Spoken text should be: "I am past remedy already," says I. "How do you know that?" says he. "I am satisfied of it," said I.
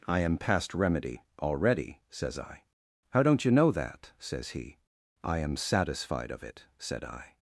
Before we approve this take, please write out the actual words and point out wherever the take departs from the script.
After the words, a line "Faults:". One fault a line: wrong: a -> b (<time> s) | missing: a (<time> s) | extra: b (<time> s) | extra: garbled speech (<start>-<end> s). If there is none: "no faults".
"I am past remedy already," says I. "How don't you know that?" says he. "I am satisfied of it," said I.
Faults:
wrong: do -> don't (3.2 s)